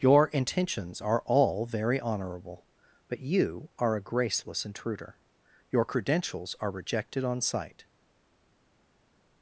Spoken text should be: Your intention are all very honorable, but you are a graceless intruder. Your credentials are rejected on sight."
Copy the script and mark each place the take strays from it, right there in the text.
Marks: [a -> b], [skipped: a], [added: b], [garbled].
Your [intention -> intentions] are all very honorable, but you are a graceless intruder. Your credentials are rejected on sight."